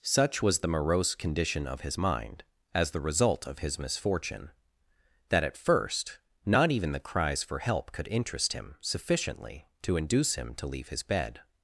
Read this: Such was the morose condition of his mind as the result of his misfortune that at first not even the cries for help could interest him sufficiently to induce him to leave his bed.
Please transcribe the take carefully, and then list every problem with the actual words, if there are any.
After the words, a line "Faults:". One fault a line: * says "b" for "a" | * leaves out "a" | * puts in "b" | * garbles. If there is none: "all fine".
Such was the morose condition of his mind as the result of his misfortune that at first not even the cries for help could interest him sufficiently to induce him to leave his bed.
Faults:
all fine